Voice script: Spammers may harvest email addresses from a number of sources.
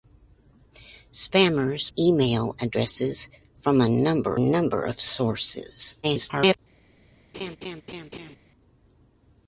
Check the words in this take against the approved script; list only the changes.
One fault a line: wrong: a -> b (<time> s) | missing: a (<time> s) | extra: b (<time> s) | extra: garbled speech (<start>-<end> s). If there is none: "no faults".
missing: may harvest (1.9 s)
extra: number (4.4 s)
extra: garbled speech (6.0-6.6 s)